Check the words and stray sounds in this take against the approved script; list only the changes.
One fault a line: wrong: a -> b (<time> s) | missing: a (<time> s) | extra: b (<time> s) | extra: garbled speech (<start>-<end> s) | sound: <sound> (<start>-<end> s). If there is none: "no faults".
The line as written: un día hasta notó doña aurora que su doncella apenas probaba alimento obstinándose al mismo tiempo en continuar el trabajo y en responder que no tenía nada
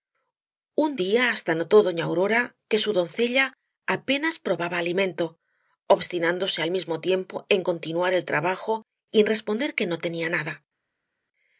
no faults